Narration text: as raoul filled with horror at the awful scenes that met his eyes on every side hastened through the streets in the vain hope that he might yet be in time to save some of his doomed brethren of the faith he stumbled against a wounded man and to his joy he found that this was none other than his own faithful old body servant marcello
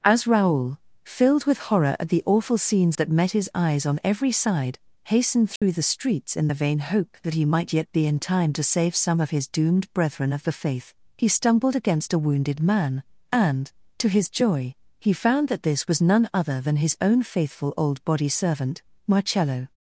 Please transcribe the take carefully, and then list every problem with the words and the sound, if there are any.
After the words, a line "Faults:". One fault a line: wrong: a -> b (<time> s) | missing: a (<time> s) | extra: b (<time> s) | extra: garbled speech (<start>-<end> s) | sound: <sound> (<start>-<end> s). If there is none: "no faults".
as raoul filled with horror at the awful scenes that met his eyes on every side hastened through the streets in the vain hope that he might yet be in time to save some of his doomed brethren of the faith he stumbled against a wounded man and to his joy he found that this was none other than his own faithful old body servant marcello
Faults:
sound: dropout (5.6-5.6 s)